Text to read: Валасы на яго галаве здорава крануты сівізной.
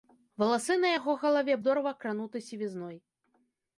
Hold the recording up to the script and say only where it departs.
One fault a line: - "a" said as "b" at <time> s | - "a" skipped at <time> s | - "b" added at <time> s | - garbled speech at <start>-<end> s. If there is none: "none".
none